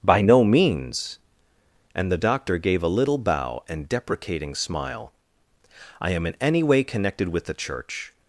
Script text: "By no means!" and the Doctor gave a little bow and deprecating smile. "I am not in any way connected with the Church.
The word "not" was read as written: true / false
false